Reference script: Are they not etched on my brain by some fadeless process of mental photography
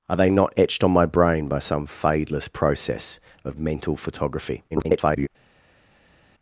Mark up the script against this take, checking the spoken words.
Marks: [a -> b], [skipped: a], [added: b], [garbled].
Are they not etched on my brain by some fadeless process of mental photography [garbled]